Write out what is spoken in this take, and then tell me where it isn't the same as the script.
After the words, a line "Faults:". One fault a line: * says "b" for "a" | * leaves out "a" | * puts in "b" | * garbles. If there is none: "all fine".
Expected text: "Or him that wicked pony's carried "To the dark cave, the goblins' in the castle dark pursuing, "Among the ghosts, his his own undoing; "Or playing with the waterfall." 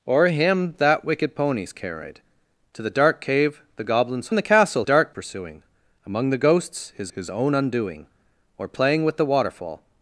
"Or him that wicked pony's carried "To the dark cave, the goblins' in the castle dark pursuing, "Among the ghosts, his his own undoing; "Or playing with the waterfall."
Faults:
all fine